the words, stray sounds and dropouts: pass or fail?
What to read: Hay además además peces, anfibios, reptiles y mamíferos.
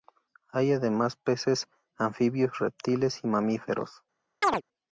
fail